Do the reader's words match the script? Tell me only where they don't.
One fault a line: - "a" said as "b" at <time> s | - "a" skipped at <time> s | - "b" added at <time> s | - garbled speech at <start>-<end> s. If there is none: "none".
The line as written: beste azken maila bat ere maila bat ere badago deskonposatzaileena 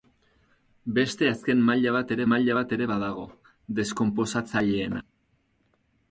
none